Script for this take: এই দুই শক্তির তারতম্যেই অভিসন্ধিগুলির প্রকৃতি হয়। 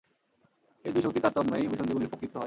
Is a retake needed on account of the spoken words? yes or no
no